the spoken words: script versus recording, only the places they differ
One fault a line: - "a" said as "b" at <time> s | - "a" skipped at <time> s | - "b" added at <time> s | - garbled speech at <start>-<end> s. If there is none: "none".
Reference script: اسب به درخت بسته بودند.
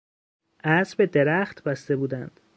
none